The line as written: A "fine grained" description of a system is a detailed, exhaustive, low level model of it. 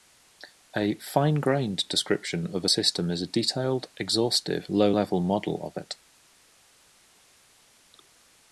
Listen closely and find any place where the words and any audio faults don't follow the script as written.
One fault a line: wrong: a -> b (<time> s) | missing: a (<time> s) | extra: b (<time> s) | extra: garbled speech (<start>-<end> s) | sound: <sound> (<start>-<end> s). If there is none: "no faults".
no faults